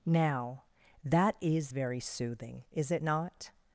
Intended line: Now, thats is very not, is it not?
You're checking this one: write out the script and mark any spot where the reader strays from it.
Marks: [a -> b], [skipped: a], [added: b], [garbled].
Now, [thats -> that] is very [not, -> soothing] is it not?